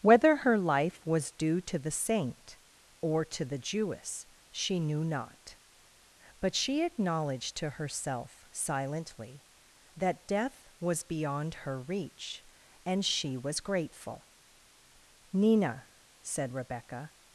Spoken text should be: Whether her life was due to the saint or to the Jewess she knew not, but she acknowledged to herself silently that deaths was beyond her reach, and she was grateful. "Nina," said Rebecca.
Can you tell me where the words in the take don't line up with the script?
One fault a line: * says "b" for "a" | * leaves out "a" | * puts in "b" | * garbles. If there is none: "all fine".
* says "death" for "deaths"